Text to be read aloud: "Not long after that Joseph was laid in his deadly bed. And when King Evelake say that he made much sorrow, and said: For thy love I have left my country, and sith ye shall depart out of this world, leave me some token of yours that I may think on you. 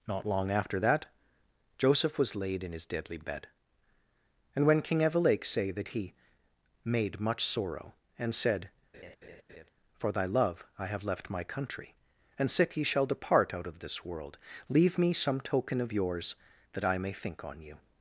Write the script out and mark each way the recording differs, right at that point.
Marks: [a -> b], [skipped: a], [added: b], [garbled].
"Not long after that Joseph was laid in his deadly bed. And when King Evelake say that he made much sorrow, and said: For thy love I have left my country, and sith ye shall depart out of this world, leave me some token of yours that I may think on you.